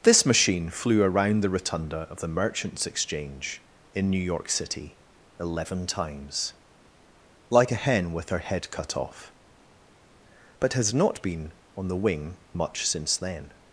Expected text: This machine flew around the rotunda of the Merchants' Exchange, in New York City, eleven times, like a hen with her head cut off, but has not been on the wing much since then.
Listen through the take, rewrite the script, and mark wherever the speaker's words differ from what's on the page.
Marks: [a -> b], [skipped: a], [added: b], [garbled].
This machine flew around the rotunda of the Merchants' Exchange, in New York City, eleven times, like a hen with her head cut off, but has not been on the wing much since then.